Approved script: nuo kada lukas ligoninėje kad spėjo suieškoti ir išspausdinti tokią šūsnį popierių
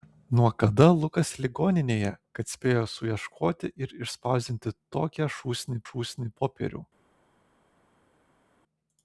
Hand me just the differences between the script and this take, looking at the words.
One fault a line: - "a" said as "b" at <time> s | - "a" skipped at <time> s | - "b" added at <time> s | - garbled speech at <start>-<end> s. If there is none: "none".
- "šūsnį" added at 5.9 s